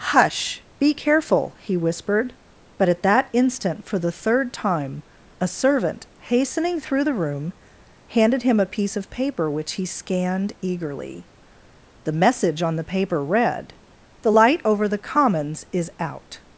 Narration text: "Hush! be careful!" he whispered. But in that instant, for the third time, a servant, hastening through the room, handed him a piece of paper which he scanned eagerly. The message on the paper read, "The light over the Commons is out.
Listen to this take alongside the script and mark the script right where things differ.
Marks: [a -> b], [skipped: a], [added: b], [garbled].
"Hush! be careful!" he whispered. But [in -> at] that instant, for the third time, a servant, hastening through the room, handed him a piece of paper which he scanned eagerly. The message on the paper read, "The light over the Commons is out.